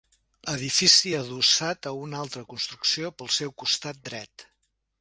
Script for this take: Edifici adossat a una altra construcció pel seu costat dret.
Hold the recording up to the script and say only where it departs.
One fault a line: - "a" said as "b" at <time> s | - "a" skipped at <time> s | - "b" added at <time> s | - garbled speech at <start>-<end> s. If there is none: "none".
none